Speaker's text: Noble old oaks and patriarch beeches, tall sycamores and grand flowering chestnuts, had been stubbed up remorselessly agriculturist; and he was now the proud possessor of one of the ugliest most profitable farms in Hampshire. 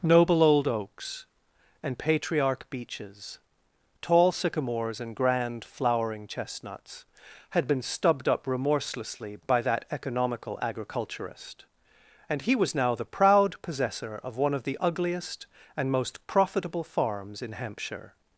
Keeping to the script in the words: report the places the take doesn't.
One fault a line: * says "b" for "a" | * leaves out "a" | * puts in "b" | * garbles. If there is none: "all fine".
* puts in "by that economical"
* puts in "and"